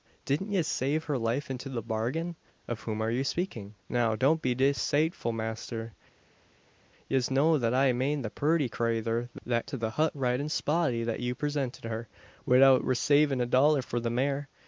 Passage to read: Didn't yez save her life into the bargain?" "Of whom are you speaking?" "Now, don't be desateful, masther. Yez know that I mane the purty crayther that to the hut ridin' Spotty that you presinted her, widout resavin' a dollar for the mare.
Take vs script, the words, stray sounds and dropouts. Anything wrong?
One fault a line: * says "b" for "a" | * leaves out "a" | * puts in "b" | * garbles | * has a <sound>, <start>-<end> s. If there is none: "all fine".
all fine